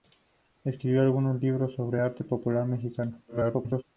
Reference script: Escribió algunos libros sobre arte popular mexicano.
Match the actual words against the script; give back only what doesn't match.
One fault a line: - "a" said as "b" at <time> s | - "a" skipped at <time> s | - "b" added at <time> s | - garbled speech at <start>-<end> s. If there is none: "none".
- garbled speech at 3.3-3.8 s